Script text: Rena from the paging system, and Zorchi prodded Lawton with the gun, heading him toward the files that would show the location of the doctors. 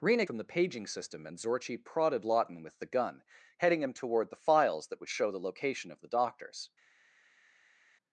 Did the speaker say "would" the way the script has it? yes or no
yes